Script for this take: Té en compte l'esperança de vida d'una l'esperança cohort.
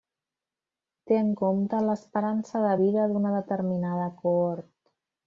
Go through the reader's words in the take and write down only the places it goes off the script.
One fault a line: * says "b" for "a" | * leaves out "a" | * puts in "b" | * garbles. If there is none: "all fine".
* says "determinada" for "l'esperança"